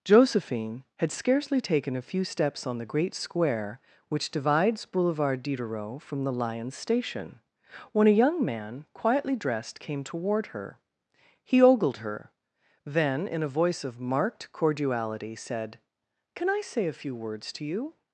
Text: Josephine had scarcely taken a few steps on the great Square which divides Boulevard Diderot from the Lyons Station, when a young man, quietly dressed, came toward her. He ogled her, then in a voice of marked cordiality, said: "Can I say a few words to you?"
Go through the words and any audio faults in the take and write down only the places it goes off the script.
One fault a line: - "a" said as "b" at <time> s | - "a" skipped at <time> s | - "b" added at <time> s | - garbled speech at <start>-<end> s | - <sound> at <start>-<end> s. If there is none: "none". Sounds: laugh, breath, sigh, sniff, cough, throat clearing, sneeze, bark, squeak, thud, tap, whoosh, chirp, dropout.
none